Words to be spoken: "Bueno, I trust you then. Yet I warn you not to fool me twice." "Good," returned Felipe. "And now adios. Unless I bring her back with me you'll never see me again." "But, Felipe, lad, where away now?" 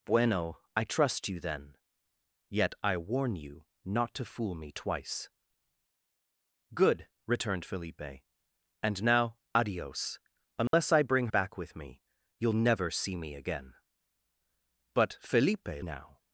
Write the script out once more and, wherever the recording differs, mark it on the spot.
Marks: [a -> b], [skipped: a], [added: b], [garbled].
"Bueno, I trust you then. Yet I warn you not to fool me twice." "Good," returned Felipe. "And now adios. Unless I bring [skipped: her] back with me you'll never see me again." "But, Felipe, [skipped: lad, where away] now?"